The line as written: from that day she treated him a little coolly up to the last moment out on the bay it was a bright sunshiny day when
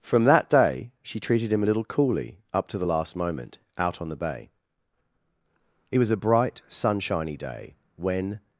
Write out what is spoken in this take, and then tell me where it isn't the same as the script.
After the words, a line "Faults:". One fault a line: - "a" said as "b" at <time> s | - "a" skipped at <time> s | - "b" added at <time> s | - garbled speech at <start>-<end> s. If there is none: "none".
from that day she treated him a little coolly up to the last moment out on the bay it was a bright sunshiny day when
Faults:
none